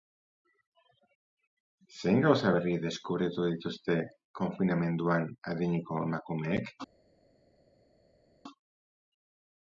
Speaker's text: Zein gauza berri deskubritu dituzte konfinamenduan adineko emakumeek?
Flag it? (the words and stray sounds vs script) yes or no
no